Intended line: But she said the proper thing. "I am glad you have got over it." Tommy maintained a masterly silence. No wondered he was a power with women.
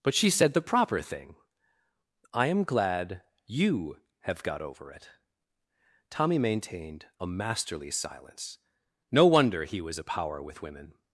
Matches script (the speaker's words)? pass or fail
fail